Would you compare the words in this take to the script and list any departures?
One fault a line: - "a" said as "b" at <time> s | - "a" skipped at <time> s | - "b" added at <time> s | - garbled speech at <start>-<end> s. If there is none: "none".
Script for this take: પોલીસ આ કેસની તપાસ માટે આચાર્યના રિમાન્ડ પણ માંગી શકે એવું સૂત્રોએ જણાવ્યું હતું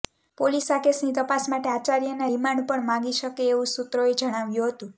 none